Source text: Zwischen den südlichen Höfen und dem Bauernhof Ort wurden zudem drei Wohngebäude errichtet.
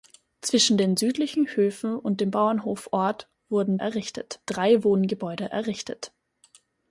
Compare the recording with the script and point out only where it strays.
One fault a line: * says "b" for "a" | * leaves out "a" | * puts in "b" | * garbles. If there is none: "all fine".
* says "errichtet" for "zudem"